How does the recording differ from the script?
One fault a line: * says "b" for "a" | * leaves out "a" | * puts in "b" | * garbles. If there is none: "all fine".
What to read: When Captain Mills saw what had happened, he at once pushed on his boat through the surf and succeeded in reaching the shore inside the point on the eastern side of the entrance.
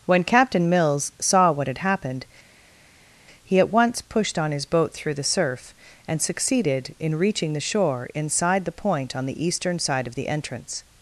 all fine